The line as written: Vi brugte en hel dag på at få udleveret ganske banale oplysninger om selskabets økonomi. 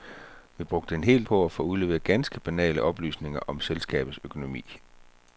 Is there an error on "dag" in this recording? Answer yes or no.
yes